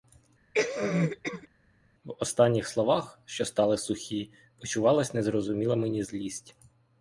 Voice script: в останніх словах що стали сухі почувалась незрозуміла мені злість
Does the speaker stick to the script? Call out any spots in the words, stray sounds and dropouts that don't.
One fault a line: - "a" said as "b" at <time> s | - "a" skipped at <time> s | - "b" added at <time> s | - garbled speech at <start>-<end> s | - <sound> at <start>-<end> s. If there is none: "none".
- cough at 0.5-1.5 s